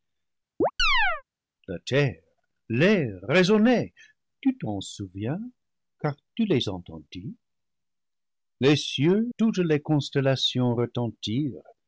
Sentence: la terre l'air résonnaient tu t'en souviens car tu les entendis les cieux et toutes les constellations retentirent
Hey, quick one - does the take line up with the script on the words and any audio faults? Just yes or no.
no